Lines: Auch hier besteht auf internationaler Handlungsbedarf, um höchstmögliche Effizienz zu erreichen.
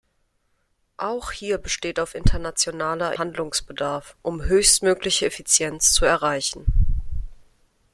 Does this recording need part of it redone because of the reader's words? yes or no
no